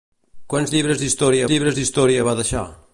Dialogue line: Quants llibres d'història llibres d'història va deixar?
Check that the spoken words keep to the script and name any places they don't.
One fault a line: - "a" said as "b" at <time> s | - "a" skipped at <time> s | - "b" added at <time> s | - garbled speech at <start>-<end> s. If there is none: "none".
none